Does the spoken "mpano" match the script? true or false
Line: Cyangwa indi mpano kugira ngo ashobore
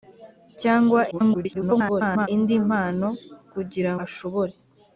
true